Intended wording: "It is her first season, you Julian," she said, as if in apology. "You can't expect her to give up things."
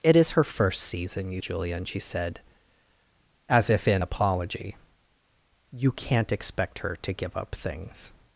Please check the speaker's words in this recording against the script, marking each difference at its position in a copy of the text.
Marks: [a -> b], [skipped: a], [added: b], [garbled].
"It is her first season, you Julian," she said, as if in apology. "You can't expect her to give up things."